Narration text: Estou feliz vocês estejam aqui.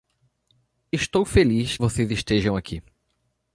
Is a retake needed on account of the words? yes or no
no